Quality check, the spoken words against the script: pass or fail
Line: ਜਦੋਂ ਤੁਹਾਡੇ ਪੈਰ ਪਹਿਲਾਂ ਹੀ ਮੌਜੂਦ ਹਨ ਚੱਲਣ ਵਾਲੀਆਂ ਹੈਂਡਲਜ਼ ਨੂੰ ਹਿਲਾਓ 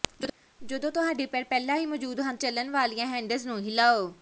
pass